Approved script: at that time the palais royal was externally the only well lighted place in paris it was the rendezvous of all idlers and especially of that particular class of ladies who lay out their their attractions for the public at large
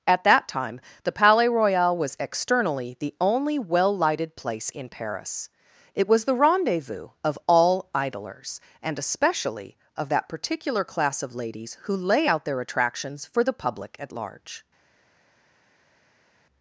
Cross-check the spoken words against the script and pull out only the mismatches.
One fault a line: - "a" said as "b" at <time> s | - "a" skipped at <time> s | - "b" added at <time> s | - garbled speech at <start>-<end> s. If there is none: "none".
- "their" skipped at 12.6 s